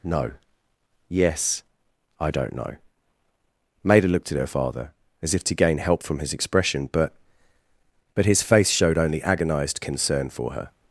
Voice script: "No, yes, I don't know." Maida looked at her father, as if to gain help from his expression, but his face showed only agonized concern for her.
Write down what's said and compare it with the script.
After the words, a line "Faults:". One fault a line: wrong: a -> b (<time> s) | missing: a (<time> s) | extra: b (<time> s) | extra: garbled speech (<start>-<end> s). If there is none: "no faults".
"No, yes, I don't know." Maida looked at her father, as if to gain help from his expression, but but his face showed only agonized concern for her.
Faults:
extra: but (8.1 s)